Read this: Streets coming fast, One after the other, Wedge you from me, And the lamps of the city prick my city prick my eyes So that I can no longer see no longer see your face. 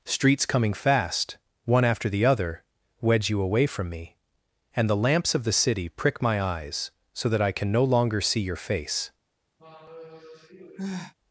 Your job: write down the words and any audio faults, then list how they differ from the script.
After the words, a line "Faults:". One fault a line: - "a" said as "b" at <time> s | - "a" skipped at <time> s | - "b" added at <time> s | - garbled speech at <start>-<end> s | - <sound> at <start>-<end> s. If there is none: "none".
Streets coming fast, One after the other, Wedge you away from me, And the lamps of the city prick my eyes So that I can no longer see your face.
Faults:
- "away" added at 3.4 s
- "city prick my" skipped at 6.4 s
- "no longer see" skipped at 8.4 s
- sigh at 9.6-11.1 s